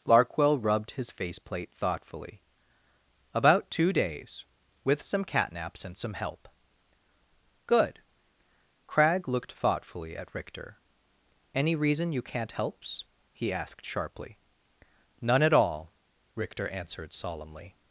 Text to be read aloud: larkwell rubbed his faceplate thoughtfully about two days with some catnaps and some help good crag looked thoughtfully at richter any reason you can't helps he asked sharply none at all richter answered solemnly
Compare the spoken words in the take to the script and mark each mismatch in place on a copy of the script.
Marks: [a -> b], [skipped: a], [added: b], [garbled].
larkwell rubbed his faceplate thoughtfully about two days with some catnaps and some help good crag looked thoughtfully at richter any reason you can't helps he asked sharply none at all richter answered solemnly